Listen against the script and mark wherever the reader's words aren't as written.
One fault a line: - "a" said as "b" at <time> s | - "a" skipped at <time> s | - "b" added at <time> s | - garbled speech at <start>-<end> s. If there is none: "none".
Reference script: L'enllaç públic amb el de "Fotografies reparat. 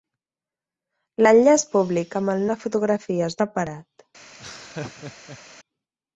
none